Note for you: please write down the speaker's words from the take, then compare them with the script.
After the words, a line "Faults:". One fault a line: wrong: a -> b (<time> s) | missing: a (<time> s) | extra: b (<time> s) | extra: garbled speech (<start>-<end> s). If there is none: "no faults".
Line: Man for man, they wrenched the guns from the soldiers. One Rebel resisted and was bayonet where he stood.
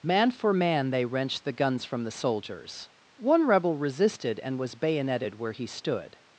Man for man, they wrenched the guns from the soldiers. One Rebel resisted and was bayoneted where he stood.
Faults:
wrong: bayonet -> bayoneted (4.7 s)